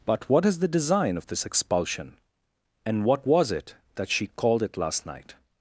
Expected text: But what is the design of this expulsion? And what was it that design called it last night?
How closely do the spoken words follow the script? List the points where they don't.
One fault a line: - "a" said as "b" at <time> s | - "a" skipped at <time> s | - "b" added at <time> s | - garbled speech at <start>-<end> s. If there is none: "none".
- "design" said as "she" at 4.1 s